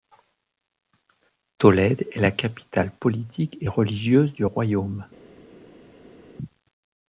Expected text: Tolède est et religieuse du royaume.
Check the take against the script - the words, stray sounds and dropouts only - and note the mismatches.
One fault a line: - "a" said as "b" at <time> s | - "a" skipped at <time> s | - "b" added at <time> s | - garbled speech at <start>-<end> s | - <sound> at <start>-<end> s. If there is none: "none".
- "la capitale politique" added at 2.2 s